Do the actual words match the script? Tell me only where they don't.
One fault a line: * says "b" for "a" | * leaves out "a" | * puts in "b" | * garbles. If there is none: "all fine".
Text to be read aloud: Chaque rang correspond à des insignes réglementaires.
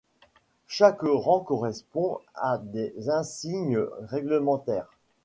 all fine